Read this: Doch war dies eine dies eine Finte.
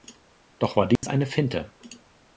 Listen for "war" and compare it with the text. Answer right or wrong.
right